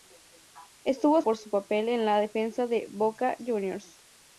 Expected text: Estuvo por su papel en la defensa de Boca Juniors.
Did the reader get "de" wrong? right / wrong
right